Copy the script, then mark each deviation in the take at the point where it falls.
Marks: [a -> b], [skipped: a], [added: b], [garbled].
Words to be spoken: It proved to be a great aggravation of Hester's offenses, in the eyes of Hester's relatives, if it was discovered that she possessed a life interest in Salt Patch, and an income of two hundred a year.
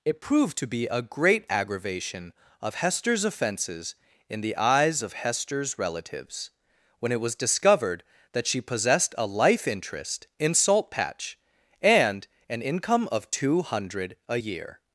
It proved to be a great aggravation of Hester's offenses, in the eyes of Hester's relatives, [if -> when] it was discovered that she possessed a life interest in Salt Patch, and an income of two hundred a year.